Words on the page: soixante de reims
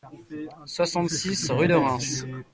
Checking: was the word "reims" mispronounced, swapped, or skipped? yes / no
no